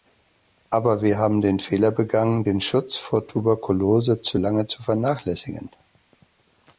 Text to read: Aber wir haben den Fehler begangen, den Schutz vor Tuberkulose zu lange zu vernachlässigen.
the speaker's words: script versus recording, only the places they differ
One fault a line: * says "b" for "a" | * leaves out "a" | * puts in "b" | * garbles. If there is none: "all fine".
all fine